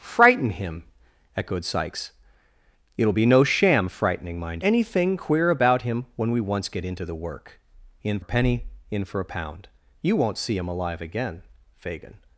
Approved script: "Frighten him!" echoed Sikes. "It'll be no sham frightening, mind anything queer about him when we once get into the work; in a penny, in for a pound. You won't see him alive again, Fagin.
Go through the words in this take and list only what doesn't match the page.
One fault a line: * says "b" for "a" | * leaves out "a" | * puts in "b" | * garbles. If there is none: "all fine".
all fine